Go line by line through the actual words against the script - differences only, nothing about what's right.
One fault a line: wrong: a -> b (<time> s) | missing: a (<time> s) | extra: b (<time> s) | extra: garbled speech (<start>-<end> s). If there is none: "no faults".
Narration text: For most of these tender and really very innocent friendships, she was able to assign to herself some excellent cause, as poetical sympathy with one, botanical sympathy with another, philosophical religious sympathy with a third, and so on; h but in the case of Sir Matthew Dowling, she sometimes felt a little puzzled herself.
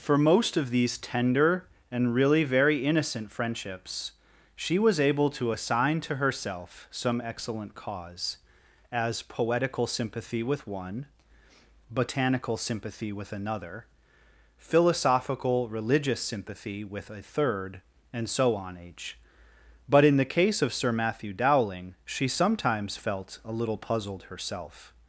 no faults